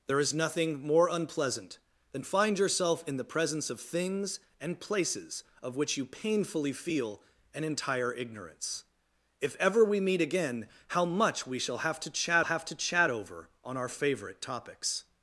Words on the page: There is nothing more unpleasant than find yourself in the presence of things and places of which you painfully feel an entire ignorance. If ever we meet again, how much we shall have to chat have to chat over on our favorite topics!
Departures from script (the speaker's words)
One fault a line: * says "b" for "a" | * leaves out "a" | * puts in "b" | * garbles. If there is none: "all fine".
all fine